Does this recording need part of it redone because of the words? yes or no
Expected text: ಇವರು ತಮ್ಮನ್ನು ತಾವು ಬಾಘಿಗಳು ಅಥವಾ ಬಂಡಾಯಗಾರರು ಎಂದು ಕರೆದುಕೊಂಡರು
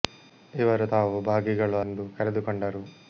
yes